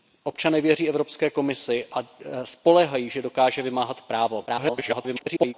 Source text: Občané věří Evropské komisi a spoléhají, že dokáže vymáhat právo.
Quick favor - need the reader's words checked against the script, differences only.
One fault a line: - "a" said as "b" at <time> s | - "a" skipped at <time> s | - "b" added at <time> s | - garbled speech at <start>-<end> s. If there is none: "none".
- garbled speech at 4.5-5.5 s